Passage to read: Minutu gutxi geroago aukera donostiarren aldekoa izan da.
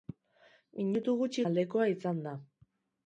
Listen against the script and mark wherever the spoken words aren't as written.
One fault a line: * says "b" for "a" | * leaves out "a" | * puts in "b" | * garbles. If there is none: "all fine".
* leaves out "geroago aukera donostiarren"